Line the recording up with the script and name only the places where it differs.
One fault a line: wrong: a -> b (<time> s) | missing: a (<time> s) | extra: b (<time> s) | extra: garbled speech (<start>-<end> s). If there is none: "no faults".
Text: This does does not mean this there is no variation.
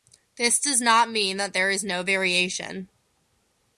missing: does (0.8 s)
wrong: this -> that (1.4 s)